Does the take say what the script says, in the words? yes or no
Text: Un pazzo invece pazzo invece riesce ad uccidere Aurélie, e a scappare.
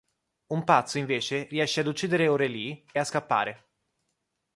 no